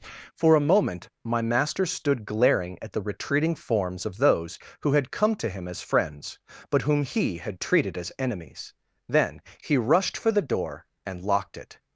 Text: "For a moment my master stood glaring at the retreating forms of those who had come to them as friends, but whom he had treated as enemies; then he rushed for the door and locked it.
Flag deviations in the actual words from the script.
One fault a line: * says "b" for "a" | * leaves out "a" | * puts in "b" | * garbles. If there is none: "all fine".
* says "him" for "them"